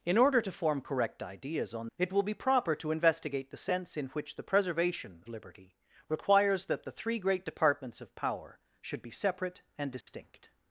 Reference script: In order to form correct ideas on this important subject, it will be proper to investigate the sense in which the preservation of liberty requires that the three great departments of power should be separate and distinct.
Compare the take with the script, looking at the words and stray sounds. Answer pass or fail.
fail